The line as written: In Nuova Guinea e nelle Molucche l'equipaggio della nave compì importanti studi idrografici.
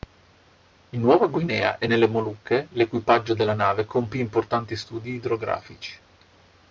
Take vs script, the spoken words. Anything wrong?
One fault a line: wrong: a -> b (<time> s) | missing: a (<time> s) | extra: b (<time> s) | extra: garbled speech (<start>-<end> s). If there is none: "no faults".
no faults